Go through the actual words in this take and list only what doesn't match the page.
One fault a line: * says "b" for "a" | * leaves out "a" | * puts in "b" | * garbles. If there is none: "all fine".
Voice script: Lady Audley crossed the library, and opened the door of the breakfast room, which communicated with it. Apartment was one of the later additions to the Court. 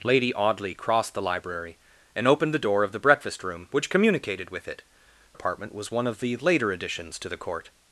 all fine